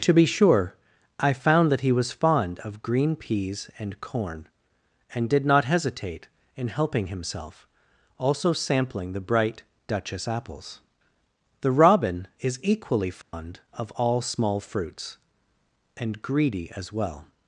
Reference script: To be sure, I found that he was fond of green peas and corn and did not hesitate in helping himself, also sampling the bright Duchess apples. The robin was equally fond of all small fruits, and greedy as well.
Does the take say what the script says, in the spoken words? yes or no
no